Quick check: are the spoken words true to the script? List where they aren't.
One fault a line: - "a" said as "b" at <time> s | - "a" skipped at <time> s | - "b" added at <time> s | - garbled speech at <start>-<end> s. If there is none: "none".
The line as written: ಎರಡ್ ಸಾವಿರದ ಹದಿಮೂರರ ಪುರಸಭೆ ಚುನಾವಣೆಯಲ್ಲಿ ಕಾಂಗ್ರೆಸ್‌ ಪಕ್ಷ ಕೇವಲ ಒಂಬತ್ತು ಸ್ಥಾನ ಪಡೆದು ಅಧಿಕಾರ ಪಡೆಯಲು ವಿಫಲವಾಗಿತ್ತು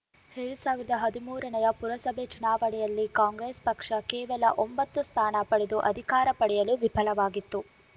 none